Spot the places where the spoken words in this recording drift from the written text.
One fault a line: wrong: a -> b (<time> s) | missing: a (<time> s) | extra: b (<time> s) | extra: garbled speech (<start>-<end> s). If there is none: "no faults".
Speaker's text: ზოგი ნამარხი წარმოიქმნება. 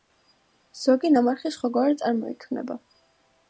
extra: სხვაგვარად (1.6 s)